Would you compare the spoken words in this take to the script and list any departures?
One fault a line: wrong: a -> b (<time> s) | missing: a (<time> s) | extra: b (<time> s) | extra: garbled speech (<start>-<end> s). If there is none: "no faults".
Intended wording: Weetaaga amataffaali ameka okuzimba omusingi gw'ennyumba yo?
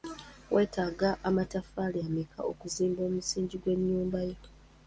no faults